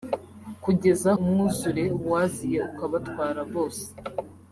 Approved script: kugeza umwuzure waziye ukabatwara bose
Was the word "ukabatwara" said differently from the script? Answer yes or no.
no